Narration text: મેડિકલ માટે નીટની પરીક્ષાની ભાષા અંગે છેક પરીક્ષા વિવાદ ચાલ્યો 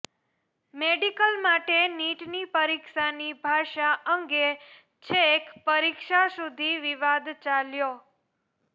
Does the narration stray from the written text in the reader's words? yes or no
yes